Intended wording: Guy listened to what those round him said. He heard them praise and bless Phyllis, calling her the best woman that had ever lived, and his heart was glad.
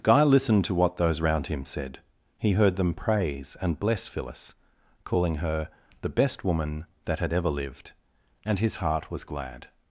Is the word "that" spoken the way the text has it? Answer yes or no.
yes